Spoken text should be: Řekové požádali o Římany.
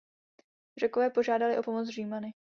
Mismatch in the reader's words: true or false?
true